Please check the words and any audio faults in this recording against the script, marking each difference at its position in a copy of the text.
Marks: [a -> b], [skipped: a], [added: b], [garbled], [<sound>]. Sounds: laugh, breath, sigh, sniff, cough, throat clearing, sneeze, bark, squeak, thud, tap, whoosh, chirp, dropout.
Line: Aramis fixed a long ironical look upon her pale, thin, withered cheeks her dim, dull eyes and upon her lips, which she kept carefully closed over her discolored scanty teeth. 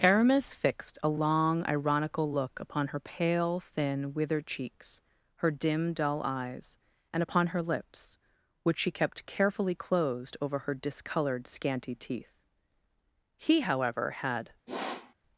Aramis fixed a long ironical look upon her pale, thin, withered cheeks her dim, dull eyes and upon her lips, which she kept carefully closed over her discolored scanty teeth. [added: He however had] [sniff]